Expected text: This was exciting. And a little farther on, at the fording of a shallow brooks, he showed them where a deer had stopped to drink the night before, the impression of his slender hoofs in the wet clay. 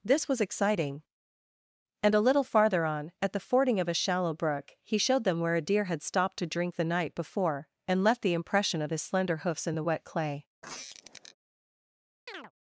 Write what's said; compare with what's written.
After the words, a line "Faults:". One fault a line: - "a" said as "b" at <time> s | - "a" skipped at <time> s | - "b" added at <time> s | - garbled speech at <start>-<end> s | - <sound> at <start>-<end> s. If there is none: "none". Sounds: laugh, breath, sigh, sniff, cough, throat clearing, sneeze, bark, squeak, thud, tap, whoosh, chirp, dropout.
This was exciting. And a little farther on, at the fording of a shallow brook, he showed them where a deer had stopped to drink the night before, and left the impression of his slender hoofs in the wet clay.
Faults:
- "brooks" said as "brook" at 4.3 s
- "and left" added at 7.9 s
- squeak at 10.6-11.3 s
- chirp at 12.3-12.5 s